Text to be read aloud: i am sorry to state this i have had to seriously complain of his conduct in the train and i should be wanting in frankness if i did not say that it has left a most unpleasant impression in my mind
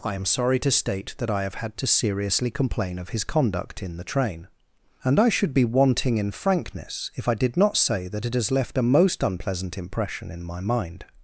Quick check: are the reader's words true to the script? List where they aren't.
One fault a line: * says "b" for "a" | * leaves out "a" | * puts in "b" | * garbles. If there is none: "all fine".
* says "that" for "this"